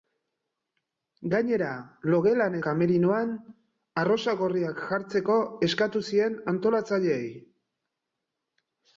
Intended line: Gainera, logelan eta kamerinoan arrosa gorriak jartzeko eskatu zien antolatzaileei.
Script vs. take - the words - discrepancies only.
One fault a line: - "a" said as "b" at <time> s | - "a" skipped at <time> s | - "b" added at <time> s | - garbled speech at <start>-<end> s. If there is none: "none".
- "eta" skipped at 2.6 s